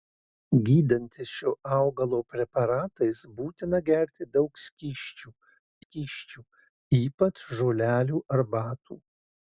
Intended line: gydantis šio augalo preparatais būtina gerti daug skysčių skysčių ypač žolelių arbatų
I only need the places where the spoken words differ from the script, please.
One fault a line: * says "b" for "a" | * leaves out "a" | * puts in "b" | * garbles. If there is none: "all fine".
all fine